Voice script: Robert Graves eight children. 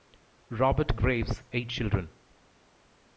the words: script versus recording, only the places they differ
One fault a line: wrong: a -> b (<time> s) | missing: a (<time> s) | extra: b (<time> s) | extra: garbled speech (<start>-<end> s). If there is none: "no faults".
no faults